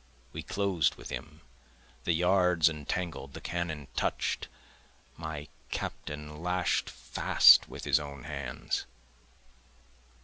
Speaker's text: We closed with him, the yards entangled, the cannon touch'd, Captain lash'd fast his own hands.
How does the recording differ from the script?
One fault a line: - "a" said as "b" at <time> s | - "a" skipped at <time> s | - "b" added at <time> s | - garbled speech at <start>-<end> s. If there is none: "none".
- "My" added at 5.2 s
- "with" added at 7.7 s